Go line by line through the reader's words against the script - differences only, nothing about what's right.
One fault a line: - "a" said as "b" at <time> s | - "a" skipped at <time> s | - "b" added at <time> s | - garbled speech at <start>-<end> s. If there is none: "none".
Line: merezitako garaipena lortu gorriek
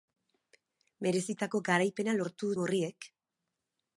none